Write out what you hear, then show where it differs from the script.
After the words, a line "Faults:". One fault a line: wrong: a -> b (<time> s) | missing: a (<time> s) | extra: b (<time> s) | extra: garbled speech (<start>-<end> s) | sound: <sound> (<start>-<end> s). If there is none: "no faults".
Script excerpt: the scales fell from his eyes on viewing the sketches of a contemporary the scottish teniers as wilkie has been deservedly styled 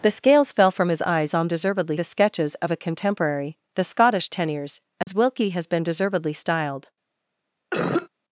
the scales fell from his eyes on deservedly the sketches of a contemporary the scottish teniers as wilkie has been deservedly styled
Faults:
wrong: viewing -> deservedly (1.5 s)
sound: dropout (5.0-5.1 s)
sound: cough (7.7-8.1 s)